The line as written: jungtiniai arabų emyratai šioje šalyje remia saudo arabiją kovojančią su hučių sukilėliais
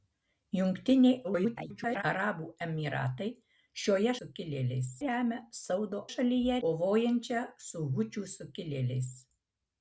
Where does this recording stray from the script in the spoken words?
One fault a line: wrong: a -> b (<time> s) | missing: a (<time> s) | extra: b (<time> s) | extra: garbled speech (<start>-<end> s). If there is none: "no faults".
extra: garbled speech (1.2-2.0 s)
wrong: šalyje -> sukilėliais (4.2 s)
wrong: arabiją -> šalyje (6.1 s)